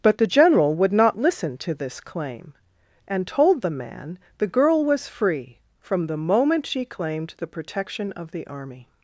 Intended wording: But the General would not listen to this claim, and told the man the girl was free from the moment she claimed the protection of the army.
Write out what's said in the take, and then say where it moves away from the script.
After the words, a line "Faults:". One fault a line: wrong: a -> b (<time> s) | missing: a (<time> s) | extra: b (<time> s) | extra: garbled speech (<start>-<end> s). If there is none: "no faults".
But the General would not listen to this claim, and told the man the girl was free from the moment she claimed the protection of the army.
Faults:
no faults